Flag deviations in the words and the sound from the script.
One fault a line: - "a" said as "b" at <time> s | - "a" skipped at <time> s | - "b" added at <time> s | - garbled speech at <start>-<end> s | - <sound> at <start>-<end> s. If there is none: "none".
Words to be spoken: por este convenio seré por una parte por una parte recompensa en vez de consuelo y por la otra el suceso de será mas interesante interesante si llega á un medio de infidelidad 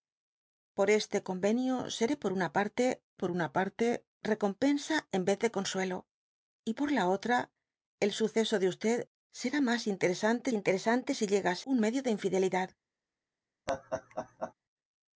- laugh at 13.7-14.5 s